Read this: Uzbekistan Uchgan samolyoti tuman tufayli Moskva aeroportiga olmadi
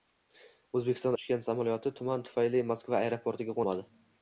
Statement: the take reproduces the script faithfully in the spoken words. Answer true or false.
true